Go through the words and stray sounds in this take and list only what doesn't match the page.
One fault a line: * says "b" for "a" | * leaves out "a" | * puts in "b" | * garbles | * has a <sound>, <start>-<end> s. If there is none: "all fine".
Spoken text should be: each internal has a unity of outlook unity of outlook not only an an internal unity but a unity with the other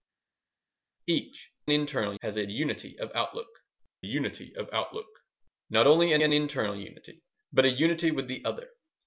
all fine